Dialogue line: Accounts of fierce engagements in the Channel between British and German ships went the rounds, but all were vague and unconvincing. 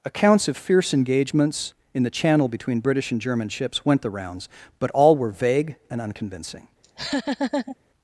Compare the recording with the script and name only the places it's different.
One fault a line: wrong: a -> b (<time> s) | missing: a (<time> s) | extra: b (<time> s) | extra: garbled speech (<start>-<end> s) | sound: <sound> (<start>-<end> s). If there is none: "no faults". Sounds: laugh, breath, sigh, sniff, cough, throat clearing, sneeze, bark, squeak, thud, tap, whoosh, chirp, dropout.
sound: laugh (6.8-7.8 s)